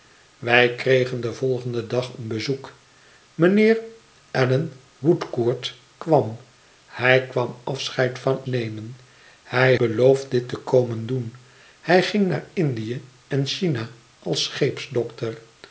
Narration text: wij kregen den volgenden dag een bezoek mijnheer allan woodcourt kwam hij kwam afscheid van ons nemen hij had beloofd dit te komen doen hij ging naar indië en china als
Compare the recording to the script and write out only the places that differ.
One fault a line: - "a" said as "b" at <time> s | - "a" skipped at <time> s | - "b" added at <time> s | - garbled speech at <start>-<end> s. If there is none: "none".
- "ons" skipped at 8.4 s
- "had" skipped at 9.8 s